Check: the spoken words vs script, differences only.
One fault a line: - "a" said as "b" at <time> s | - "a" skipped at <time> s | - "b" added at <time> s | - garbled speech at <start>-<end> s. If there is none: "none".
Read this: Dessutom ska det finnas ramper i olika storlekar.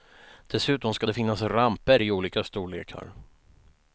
none